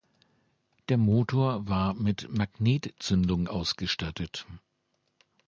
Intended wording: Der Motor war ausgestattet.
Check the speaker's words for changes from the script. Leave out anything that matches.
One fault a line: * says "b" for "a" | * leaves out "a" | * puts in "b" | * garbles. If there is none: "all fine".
* puts in "mit Magnetzündung"